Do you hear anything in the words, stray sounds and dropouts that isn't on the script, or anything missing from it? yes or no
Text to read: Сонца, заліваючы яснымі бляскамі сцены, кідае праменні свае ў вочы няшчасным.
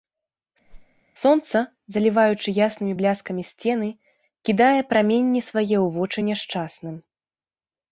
yes